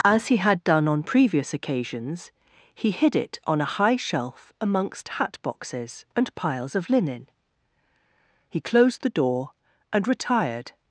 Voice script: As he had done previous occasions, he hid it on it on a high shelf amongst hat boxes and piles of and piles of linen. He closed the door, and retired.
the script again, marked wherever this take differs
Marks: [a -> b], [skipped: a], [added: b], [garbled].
As he had done [added: on] previous occasions, he hid it on [skipped: it on] a high shelf amongst hat boxes and piles of [skipped: and piles of] linen. He closed the door, and retired.